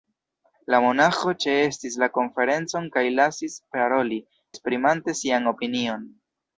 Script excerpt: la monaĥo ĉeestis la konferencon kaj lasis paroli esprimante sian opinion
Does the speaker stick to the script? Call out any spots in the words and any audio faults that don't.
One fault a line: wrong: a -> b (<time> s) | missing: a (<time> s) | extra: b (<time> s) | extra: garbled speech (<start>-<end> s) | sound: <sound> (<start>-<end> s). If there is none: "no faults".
no faults